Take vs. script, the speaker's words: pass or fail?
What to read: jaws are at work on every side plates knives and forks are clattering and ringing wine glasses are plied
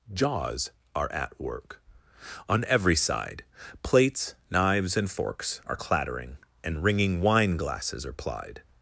pass